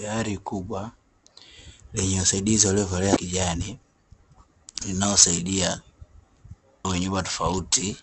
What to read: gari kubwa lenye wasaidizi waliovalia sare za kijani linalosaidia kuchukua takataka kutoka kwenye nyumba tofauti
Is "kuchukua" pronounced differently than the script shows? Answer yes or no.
yes